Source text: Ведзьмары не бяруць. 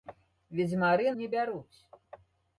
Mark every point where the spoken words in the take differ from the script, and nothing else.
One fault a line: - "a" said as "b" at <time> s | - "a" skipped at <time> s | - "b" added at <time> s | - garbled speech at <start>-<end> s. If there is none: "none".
none